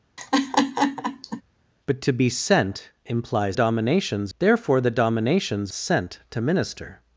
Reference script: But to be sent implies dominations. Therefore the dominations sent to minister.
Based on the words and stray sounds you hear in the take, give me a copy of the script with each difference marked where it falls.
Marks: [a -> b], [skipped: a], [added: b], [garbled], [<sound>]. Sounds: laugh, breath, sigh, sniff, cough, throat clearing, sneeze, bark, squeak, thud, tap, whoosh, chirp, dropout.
[laugh] But to be sent implies dominations. Therefore the dominations sent to minister.